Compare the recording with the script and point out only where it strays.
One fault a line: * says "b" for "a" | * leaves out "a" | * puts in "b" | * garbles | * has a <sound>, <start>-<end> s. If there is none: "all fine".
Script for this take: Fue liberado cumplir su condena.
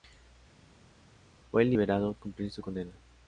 all fine